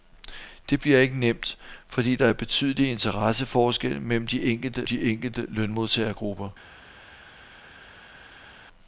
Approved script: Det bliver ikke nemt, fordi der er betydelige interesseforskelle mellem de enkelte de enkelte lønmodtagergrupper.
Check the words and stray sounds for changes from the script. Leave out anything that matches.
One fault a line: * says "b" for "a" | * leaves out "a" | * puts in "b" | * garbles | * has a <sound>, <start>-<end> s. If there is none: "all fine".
all fine